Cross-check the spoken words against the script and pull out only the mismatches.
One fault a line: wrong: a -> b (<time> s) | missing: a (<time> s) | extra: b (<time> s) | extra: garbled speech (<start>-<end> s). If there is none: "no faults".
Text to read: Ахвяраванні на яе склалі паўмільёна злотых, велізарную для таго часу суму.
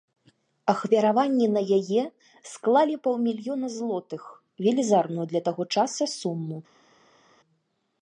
no faults